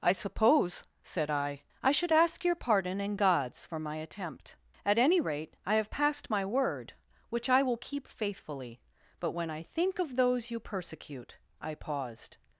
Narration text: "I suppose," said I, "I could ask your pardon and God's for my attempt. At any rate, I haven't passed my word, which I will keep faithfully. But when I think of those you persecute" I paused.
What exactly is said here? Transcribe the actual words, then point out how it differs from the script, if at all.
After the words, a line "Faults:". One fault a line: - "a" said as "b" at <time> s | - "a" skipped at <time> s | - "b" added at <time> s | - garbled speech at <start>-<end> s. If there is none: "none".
"I suppose," said I, "I should ask your pardon and God's for my attempt. At any rate, I have passed my word, which I will keep faithfully. But when I think of those you persecute" I paused.
Faults:
- "could" said as "should" at 1.9 s
- "haven't" said as "have" at 5.8 s